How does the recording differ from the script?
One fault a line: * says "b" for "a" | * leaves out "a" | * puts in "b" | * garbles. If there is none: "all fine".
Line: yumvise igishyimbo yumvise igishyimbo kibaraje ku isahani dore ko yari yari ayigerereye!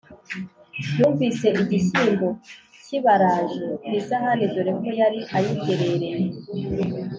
* leaves out "yumvise igishyimbo"
* leaves out "yari"